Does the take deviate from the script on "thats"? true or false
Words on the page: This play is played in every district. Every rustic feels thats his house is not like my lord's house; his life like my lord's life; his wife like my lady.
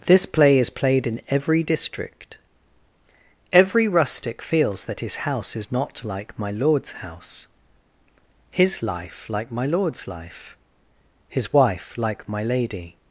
true